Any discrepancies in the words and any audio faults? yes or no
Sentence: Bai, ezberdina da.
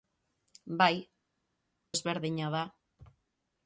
no